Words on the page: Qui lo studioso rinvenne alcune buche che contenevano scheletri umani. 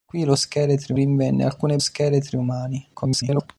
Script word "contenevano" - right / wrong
wrong